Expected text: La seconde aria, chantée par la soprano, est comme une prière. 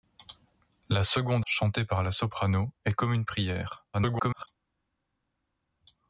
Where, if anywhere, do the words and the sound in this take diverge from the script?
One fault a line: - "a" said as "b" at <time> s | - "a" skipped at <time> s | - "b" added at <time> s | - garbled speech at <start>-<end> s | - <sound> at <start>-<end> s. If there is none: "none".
- "aria" skipped at 1.4 s
- garbled speech at 3.9-4.5 s